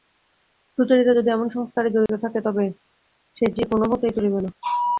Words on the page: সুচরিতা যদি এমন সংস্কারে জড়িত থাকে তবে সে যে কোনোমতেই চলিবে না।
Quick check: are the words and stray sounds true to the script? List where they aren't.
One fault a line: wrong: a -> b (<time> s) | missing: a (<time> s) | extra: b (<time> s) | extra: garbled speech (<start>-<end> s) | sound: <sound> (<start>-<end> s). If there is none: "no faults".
sound: dropout (2.1-2.1 s)